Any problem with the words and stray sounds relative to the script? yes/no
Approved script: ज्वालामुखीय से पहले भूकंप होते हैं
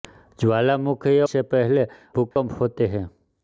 yes